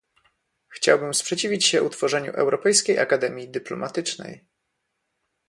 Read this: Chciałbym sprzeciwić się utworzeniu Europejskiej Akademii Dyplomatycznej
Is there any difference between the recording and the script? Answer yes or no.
no